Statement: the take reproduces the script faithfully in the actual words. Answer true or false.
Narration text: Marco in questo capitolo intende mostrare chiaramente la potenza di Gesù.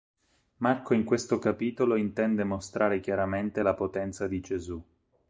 true